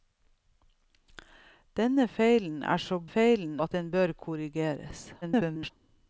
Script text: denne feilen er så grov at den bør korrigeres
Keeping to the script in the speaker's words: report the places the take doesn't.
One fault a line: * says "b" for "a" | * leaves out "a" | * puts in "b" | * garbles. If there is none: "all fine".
* says "feilen" for "grov"
* garbles